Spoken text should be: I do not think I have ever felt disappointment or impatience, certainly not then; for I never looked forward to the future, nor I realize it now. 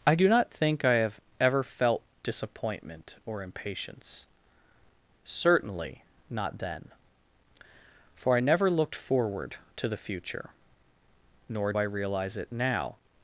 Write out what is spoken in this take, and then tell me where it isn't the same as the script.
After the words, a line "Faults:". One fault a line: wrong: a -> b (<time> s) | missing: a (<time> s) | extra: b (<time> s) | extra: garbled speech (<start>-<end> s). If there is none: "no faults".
I do not think I have ever felt disappointment or impatience, certainly not then; for I never looked forward to the future, nor I realize it now.
Faults:
no faults